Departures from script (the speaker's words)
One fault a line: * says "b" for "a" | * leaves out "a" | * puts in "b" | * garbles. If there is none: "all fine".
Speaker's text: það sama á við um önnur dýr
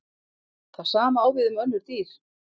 all fine